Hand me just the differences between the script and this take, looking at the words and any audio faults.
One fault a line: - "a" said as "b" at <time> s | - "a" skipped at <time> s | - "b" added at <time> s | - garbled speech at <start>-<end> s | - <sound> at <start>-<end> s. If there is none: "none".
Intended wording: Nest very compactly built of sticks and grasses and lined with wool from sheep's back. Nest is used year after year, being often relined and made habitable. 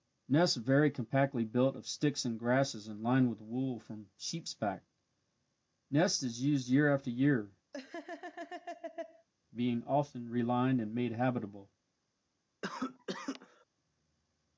- laugh at 7.7-9.3 s
- cough at 12.6-13.7 s